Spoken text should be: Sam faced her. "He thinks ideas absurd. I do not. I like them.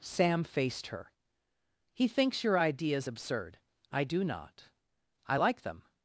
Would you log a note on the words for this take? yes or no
yes